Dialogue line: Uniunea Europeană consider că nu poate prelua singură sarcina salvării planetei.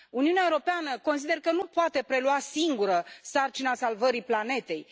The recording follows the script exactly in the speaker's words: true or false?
true